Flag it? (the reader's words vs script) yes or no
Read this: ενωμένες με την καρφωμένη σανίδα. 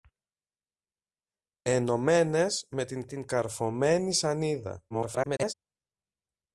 yes